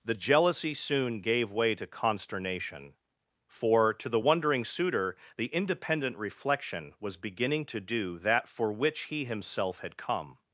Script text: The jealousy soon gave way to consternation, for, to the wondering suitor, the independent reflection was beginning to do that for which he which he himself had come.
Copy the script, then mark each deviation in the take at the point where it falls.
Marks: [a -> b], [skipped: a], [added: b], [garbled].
The jealousy soon gave way to consternation, for, to the wondering suitor, the independent reflection was beginning to do that for which he [skipped: which he] himself had come.